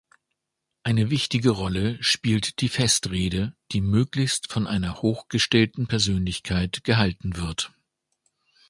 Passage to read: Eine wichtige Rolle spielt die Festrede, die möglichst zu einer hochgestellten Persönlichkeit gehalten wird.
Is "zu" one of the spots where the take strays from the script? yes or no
yes